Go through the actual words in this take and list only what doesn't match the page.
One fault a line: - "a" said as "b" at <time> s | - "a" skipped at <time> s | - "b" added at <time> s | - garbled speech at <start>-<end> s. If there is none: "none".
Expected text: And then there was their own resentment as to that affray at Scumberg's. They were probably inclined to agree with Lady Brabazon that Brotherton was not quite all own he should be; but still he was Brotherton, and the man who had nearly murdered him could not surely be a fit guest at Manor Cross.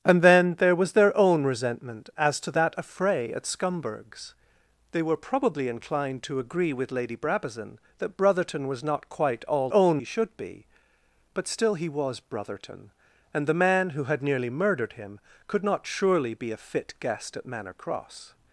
none